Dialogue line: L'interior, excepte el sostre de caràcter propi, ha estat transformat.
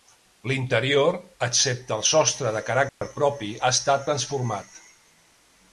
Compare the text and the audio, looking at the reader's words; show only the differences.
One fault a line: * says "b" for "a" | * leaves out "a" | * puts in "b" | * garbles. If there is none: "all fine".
all fine